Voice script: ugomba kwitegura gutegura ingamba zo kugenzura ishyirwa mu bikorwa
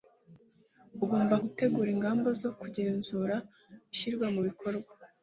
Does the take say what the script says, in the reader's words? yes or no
no